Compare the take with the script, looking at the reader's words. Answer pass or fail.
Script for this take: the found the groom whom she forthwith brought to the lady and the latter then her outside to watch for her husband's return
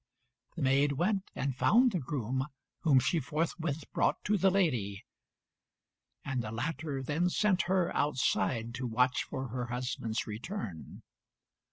fail